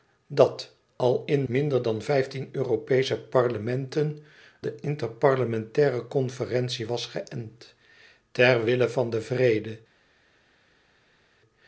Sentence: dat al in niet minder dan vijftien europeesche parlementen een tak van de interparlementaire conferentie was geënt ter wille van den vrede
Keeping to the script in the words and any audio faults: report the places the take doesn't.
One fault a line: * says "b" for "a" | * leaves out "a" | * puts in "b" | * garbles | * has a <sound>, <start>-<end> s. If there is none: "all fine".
* leaves out "niet"
* leaves out "een tak van"